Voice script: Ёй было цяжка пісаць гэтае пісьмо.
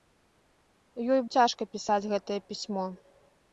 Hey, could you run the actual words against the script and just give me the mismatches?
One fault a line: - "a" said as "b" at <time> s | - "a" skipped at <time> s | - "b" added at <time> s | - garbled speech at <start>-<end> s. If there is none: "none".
- "было" skipped at 1.2 s